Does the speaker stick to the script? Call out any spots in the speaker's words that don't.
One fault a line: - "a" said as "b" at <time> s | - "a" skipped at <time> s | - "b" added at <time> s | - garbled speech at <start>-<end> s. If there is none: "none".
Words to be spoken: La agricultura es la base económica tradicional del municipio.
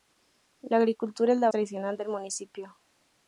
- "base económica" skipped at 1.5 s